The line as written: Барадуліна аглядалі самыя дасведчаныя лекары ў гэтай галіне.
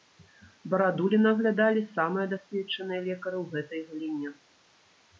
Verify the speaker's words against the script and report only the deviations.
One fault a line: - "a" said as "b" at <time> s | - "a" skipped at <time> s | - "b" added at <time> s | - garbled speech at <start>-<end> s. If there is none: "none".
none